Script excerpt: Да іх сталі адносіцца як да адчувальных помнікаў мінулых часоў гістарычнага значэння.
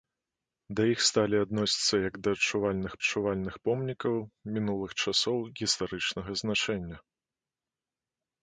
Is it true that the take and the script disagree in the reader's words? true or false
true